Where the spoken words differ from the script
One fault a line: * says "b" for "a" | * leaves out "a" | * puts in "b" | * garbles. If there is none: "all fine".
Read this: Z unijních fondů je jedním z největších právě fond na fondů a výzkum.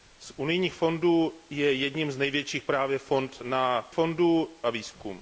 all fine